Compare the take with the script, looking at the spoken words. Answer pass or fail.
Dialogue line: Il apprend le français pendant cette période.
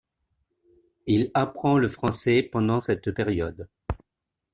pass